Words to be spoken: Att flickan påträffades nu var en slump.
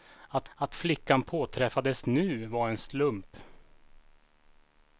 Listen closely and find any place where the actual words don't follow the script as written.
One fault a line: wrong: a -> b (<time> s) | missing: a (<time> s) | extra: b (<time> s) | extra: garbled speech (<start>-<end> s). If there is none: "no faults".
extra: att (0.5 s)